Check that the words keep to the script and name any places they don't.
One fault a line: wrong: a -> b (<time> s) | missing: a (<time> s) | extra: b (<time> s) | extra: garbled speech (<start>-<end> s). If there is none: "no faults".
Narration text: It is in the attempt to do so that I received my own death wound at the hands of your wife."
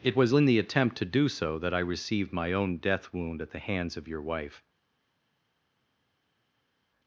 wrong: is -> was (0.1 s)